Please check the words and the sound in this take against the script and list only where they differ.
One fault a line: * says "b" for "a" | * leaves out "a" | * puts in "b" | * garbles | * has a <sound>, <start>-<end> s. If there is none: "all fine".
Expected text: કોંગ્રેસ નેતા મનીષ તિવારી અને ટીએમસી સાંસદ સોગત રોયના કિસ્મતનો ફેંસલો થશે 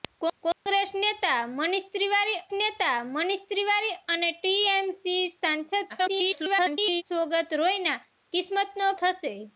* has a dropout, 0.5-0.7 s
* puts in "નેતા મનીષ તિવારી"
* garbles
* leaves out "ફેંસલો"